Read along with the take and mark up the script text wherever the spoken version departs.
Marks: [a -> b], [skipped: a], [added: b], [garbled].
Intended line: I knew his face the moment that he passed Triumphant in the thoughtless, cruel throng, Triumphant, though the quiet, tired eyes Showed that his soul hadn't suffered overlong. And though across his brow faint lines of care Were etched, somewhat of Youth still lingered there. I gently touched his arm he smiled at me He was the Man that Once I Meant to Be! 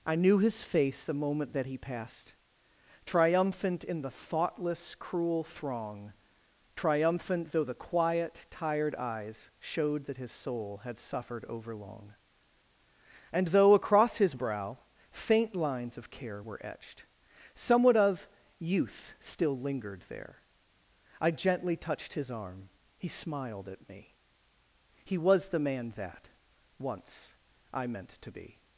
I knew his face the moment that he passed Triumphant in the thoughtless, cruel throng, Triumphant, though the quiet, tired eyes Showed that his soul [hadn't -> had] suffered overlong. And though across his brow faint lines of care Were etched, somewhat of Youth still lingered there. I gently touched his arm he smiled at me He was the Man that Once I Meant to Be!